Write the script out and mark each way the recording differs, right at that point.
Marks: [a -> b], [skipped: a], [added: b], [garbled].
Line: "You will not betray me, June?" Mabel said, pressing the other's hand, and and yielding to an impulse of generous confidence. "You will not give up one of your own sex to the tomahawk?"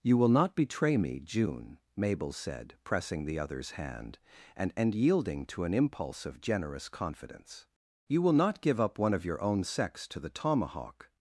"You will not betray me, June?" Mabel said, pressing the other's hand, and and yielding to an impulse of generous confidence. "You will not give up one of your own sex to the tomahawk?"